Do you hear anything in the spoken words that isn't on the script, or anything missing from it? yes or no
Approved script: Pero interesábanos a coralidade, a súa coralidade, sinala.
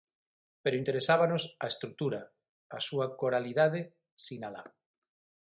yes